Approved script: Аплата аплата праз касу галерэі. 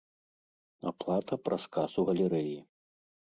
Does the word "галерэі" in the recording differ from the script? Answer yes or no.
no